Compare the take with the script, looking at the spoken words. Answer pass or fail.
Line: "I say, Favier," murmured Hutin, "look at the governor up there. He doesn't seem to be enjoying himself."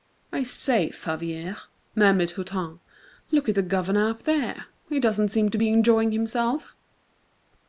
pass